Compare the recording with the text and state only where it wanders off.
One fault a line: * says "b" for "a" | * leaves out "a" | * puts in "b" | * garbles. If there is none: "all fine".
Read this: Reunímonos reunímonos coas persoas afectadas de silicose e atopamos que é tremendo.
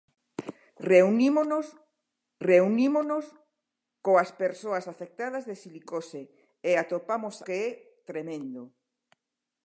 all fine